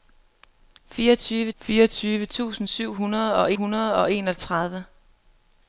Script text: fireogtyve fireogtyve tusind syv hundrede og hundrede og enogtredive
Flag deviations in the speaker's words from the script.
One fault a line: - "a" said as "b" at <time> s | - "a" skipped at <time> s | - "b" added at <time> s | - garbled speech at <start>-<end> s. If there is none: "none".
none